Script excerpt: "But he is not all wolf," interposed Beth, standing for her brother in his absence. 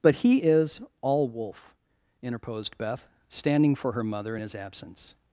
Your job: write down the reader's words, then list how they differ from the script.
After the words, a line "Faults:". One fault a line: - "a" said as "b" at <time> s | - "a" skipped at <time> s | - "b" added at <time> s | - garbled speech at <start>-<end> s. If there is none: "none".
"But he is all wolf," interposed Beth, standing for her mother in his absence.
Faults:
- "not" skipped at 0.8 s
- "brother" said as "mother" at 4.0 s